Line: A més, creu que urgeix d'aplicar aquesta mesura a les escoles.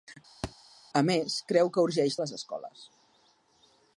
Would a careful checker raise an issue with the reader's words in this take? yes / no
yes